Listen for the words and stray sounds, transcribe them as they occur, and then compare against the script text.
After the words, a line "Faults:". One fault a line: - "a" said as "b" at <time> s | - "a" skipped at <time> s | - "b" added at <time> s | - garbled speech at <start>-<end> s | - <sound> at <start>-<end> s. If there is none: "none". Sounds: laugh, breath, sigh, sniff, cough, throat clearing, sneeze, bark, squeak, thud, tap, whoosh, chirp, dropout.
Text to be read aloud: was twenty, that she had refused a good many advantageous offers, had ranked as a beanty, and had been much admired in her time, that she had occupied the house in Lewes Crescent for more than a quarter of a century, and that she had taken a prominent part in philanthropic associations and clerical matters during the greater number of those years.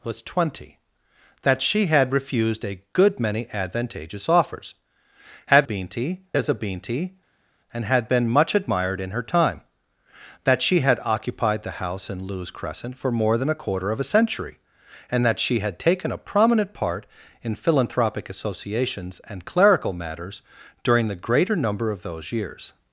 was twenty, that she had refused a good many advantageous offers, had beanty as a beanty, and had been much admired in her time, that she had occupied the house in Lewes Crescent for more than a quarter of a century, and that she had taken a prominent part in philanthropic associations and clerical matters during the greater number of those years.
Faults:
- "ranked" said as "beanty" at 5.6 s